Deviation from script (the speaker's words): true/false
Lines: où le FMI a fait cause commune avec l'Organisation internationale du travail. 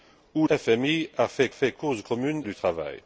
true